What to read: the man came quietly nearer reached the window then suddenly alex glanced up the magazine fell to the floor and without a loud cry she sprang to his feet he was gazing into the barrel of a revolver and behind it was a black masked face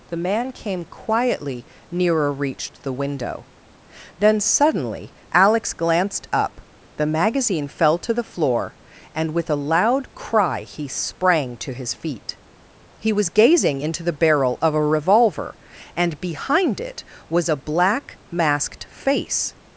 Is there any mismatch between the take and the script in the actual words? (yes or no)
yes